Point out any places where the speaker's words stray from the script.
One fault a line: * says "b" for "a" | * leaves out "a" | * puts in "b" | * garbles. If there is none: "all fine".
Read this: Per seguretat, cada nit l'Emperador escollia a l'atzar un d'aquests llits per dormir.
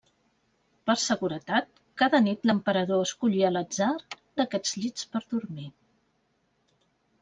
* leaves out "un"